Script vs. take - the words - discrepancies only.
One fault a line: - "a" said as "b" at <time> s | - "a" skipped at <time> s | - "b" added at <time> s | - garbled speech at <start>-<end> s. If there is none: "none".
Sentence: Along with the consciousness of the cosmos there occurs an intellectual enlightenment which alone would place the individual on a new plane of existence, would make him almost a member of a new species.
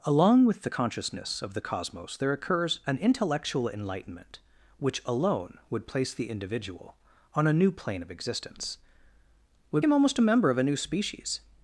- "make" skipped at 9.8 s